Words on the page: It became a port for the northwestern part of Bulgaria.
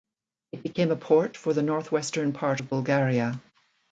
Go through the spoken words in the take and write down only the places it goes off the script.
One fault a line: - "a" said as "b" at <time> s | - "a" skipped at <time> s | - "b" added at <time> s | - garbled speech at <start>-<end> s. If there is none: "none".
none